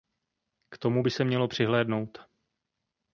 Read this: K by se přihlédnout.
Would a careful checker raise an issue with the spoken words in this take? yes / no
yes